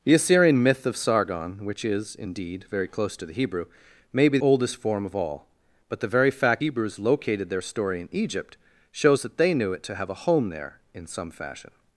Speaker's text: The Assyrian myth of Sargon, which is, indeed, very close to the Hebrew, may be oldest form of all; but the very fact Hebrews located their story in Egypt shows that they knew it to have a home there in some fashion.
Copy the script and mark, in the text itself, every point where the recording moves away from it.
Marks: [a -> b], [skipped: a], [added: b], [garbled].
The Assyrian myth of Sargon, which is, indeed, very close to the Hebrew, may be oldest form of all; but the very fact Hebrews located their story in Egypt shows that they knew it to have a home there in some fashion.